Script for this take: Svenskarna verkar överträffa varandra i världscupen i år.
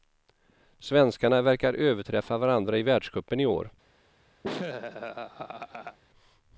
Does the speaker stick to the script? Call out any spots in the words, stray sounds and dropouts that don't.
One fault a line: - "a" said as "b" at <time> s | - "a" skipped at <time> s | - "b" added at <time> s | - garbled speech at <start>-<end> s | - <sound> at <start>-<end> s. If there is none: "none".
- laugh at 4.4-6.0 s